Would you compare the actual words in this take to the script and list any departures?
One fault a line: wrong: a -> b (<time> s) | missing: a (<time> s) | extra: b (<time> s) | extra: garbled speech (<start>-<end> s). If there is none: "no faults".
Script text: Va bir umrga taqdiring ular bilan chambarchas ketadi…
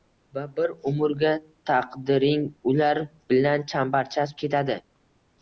no faults